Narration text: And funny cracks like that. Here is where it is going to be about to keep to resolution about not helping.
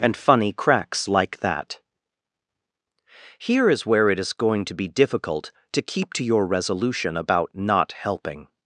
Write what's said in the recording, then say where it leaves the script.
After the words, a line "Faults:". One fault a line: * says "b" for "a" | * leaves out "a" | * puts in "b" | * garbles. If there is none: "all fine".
And funny cracks like that. Here is where it is going to be difficult to keep to your resolution about not helping.
Faults:
* says "difficult" for "about"
* puts in "your"